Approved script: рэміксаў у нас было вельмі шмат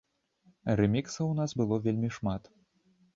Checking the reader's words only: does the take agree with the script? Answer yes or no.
yes